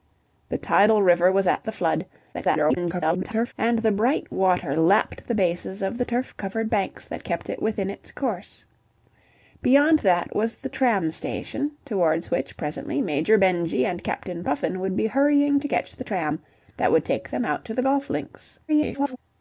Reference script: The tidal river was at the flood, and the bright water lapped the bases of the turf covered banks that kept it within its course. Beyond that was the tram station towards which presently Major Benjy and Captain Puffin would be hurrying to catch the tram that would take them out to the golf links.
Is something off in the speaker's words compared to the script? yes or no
yes